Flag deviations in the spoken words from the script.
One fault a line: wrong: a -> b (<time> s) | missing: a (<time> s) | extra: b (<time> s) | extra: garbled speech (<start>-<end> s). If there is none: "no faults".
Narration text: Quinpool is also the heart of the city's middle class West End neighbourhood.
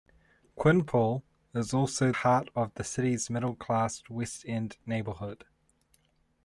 missing: the (2.1 s)